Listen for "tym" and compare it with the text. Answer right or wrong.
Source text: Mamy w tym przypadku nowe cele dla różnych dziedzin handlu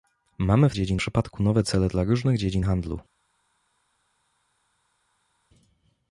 wrong